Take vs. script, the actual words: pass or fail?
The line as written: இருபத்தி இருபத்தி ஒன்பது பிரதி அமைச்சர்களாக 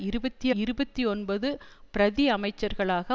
pass